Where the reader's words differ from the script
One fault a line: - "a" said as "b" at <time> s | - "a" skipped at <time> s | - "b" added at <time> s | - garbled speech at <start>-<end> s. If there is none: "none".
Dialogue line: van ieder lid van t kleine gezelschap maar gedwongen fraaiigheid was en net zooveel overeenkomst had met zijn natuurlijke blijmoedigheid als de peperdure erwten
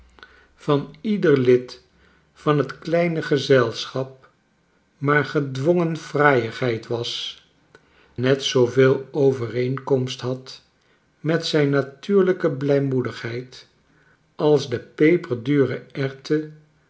- "en" skipped at 7.4 s